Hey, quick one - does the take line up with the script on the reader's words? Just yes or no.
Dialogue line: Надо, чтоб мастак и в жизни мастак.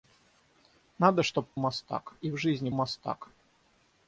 yes